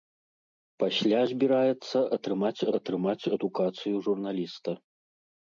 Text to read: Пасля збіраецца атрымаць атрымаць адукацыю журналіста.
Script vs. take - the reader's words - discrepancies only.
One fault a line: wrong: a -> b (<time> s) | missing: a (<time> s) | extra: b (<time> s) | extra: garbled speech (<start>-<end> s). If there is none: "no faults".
no faults